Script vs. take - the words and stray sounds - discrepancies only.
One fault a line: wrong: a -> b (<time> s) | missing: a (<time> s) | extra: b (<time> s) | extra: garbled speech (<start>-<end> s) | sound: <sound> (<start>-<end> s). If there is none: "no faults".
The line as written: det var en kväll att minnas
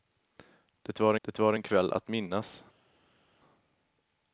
extra: det var (1.2 s)